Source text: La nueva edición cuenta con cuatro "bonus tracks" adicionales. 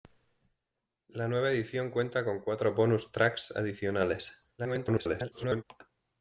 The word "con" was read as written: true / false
true